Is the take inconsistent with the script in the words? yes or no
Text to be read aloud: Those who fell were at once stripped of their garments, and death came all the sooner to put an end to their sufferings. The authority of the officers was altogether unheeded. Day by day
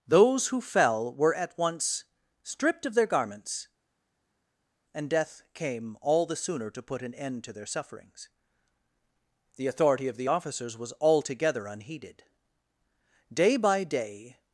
no